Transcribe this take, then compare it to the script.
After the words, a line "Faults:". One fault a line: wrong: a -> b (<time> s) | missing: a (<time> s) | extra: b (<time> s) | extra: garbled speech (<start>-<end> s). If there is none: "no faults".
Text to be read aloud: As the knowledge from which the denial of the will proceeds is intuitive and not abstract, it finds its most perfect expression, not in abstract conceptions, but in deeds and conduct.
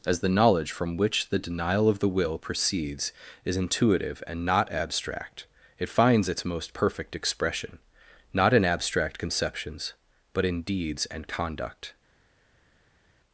As the knowledge from which the denial of the will proceeds is intuitive and not abstract, it finds its most perfect expression, not in abstract conceptions, but in deeds and conduct.
Faults:
no faults